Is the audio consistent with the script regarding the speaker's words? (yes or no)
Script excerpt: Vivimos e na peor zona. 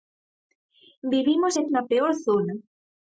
yes